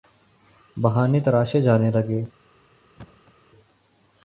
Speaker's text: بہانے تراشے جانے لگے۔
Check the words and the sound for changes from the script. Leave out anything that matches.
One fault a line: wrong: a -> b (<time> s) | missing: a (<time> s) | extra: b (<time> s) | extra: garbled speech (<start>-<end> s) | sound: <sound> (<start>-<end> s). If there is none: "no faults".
sound: thud (3.0-3.3 s)